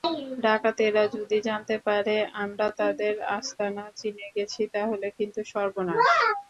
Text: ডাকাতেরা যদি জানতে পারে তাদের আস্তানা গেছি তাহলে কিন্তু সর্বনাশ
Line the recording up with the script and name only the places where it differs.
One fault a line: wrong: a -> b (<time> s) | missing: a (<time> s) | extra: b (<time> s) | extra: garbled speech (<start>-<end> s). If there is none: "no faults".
extra: আমরা (2.3 s)
extra: চিনে (4.0 s)